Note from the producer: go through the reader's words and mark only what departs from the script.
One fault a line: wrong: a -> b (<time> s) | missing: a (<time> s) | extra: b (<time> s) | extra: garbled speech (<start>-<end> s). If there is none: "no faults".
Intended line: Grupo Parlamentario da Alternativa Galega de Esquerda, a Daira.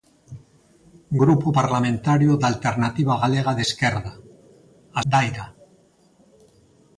no faults